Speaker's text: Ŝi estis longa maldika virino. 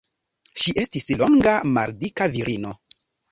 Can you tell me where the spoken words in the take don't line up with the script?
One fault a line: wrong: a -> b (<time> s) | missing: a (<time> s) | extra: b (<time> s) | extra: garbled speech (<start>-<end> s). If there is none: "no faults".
no faults